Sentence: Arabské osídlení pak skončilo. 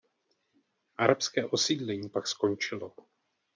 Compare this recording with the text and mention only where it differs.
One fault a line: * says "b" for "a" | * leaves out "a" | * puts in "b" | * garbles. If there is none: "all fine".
all fine